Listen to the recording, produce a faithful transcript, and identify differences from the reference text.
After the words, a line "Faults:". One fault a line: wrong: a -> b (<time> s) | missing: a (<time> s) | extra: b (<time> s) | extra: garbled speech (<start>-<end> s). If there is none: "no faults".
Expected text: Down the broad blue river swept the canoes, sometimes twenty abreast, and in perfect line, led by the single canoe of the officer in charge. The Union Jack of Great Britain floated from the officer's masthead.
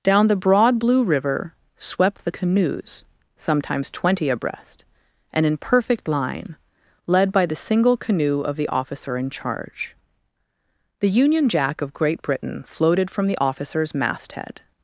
Down the broad blue river swept the canoes, sometimes twenty abreast, and in perfect line, led by the single canoe of the officer in charge. The Union Jack of Great Britain floated from the officer's masthead.
Faults:
no faults